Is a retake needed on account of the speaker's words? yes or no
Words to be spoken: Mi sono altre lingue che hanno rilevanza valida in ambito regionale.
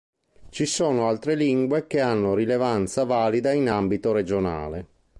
yes